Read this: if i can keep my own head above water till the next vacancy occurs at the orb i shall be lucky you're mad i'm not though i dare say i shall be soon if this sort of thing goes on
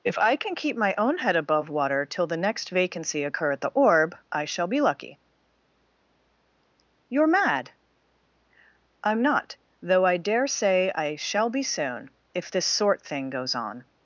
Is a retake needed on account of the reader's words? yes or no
yes